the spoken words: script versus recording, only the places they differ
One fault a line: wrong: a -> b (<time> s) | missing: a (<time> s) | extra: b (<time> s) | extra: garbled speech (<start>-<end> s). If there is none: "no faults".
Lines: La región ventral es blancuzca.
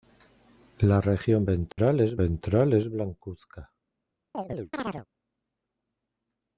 extra: ventral es (2.1 s)